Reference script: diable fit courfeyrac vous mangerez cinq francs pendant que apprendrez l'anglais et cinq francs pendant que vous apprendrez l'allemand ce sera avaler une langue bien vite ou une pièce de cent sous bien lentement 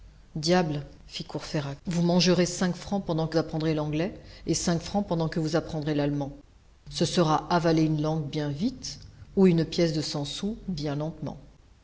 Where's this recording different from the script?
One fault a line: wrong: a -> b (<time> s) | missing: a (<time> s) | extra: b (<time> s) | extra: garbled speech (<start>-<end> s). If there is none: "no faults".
no faults